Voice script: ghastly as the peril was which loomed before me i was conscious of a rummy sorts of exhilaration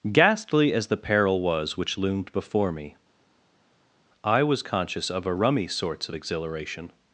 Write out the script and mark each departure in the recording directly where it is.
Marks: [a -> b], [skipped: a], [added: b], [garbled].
ghastly as the peril was which loomed before me i was conscious of a rummy sorts of exhilaration